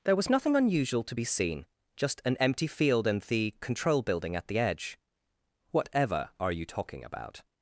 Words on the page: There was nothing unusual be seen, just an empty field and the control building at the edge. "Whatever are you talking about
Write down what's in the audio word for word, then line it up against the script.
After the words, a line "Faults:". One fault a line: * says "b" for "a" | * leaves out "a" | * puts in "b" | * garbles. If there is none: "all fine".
There was nothing unusual to be seen, just an empty field and the control building at the edge. "Whatever are you talking about
Faults:
* puts in "to"